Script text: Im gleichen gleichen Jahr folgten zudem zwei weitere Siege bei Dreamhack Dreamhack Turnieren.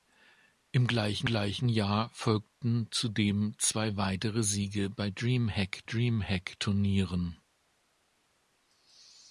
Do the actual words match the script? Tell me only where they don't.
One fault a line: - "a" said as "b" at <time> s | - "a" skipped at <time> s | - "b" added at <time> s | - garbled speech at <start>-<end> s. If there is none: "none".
none